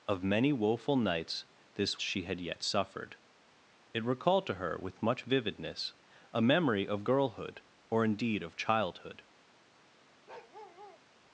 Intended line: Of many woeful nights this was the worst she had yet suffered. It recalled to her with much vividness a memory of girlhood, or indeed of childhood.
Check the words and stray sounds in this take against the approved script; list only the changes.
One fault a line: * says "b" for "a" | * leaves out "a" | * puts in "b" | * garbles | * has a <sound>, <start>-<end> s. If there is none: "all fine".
* leaves out "was the worst"
* has a bark, 10.3-11.0 s